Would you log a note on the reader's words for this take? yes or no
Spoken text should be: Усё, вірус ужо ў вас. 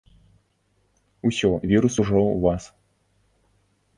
no